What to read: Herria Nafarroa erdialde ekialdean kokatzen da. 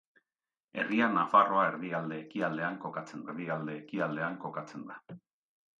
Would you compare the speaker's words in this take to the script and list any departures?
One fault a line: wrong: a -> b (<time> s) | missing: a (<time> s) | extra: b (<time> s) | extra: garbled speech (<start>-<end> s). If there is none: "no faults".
extra: erdialde ekialdean kokatzen (3.3 s)